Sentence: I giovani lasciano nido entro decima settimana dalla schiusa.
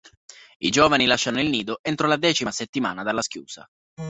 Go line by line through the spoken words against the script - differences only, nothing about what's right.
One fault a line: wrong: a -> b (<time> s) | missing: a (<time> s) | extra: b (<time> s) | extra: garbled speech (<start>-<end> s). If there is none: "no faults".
extra: il (1.4 s)
extra: la (2.1 s)